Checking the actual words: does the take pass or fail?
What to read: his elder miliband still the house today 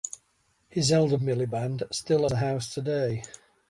pass